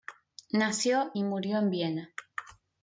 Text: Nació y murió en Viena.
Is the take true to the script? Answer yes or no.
yes